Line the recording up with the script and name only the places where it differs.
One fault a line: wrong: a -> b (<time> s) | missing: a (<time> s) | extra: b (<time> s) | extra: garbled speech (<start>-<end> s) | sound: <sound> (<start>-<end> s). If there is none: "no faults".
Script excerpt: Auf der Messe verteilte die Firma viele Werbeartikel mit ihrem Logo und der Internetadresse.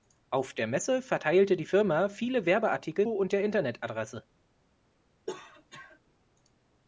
missing: mit ihrem Logo (3.0 s)
sound: cough (5.3-6.0 s)